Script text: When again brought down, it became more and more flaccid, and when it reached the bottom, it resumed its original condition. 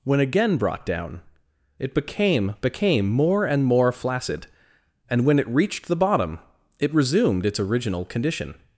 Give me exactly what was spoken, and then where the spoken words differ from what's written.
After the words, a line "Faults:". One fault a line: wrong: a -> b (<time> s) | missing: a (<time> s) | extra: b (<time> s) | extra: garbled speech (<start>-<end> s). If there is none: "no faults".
When again brought down, it became became more and more flaccid, and when it reached the bottom, it resumed its original condition.
Faults:
extra: became (2.6 s)